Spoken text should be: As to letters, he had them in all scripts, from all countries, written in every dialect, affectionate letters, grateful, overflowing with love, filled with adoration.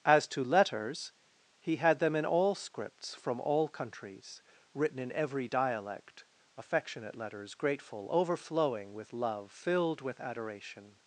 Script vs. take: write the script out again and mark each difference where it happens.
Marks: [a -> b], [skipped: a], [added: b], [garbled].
As to letters, he had them in all scripts, from all countries, written in every dialect, affectionate letters, grateful, overflowing with love, filled with adoration.